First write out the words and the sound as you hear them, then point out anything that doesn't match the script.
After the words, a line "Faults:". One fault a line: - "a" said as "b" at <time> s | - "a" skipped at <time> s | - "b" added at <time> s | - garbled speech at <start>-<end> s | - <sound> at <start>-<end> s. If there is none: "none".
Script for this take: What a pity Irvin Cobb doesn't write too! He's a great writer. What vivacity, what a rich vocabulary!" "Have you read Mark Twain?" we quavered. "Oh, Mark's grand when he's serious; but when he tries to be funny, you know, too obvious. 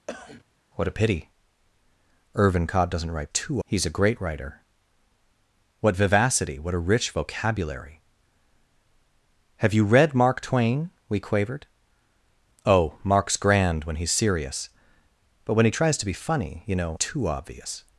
What a pity Irvin Cobb doesn't write too! He's a great writer. What vivacity, what a rich vocabulary!" "Have you read Mark Twain?" we quavered. "Oh, Mark's grand when he's serious; but when he tries to be funny, you know, too obvious.
Faults:
- cough at 0.1-0.4 s